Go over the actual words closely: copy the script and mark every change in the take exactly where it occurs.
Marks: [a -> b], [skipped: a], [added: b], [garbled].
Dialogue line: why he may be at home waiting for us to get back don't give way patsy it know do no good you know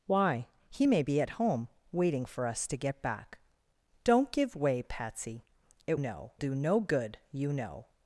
why he may be at home waiting for us to get back don't give way patsy it know do no good you know